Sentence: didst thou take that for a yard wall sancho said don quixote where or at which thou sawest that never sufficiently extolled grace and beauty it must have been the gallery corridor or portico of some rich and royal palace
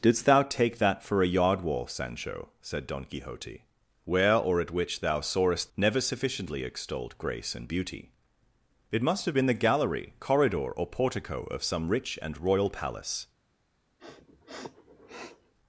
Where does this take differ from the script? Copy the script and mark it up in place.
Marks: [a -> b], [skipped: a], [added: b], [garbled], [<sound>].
didst thou take that for a yard wall sancho said don quixote where or at which thou sawest [skipped: that] never sufficiently extolled grace and beauty it must have been the gallery corridor or portico of some rich and royal palace [sniff]